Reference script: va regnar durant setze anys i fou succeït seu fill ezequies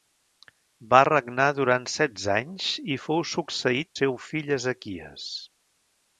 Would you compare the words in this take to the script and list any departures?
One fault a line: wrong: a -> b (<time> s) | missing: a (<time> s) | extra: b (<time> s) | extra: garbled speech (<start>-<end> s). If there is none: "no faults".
no faults